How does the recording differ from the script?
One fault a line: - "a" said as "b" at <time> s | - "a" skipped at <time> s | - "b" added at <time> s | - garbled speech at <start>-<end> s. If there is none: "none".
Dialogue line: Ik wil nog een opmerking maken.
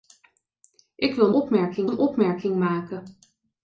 - "nog" said as "opmerking" at 1.3 s